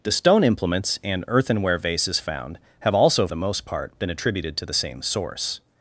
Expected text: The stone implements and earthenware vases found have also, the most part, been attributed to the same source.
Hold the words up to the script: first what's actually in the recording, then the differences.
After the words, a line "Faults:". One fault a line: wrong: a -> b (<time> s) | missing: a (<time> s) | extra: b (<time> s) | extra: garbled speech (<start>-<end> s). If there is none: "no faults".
The stone implements and earthenware vases found have also, the most part, been attributed to the same source.
Faults:
no faults